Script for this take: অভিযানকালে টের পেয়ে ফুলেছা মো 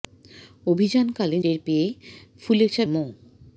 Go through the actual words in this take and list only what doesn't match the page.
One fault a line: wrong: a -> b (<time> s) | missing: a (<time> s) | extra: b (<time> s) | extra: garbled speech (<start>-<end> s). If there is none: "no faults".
no faults